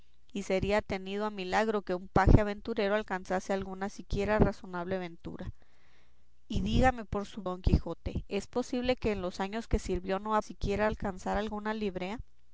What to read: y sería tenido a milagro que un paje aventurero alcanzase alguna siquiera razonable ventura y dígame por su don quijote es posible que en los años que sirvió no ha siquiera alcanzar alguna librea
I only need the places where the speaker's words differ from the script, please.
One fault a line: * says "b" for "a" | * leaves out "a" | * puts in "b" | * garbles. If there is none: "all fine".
all fine